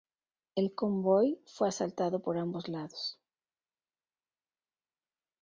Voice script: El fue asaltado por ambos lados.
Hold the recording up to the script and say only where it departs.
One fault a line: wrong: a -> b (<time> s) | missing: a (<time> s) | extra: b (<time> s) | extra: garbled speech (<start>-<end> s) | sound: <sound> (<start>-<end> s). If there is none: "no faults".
extra: convoy (0.7 s)